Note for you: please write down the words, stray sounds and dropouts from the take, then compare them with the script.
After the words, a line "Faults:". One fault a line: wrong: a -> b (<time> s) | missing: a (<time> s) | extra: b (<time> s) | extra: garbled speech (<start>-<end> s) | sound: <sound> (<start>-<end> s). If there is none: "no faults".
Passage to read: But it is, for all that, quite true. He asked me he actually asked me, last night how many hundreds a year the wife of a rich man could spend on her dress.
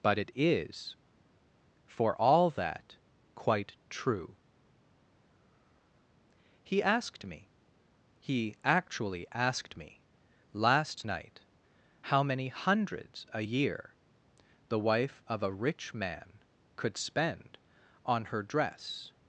But it is, for all that, quite true. He asked me he actually asked me, last night how many hundreds a year the wife of a rich man could spend on her dress.
Faults:
no faults